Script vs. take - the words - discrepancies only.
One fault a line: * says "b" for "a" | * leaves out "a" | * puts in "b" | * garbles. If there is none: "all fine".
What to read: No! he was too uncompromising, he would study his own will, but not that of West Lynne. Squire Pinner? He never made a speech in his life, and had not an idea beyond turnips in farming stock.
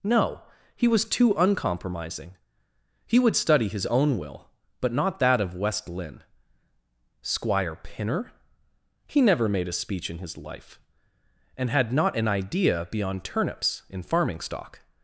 all fine